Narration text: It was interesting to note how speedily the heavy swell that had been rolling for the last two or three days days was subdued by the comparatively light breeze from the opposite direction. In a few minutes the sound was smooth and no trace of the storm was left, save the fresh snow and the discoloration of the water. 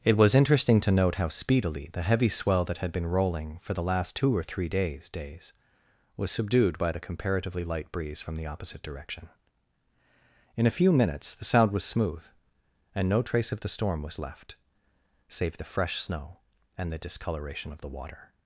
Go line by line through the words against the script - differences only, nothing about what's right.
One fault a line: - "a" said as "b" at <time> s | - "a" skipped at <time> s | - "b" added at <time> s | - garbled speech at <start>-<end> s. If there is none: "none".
none